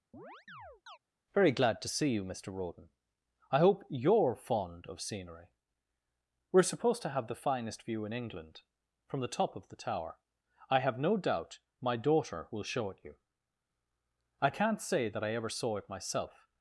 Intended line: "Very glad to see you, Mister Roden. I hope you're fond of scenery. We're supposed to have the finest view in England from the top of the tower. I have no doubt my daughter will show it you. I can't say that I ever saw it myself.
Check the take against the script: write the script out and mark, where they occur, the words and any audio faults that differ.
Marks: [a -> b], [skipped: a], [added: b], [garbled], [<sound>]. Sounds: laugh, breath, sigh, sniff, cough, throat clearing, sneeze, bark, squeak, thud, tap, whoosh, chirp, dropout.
[chirp] "Very glad to see you, Mister Roden. I hope you're fond of scenery. We're supposed to have the finest view in England from the top of the tower. I have no doubt my daughter will show it you. I can't say that I ever saw it myself.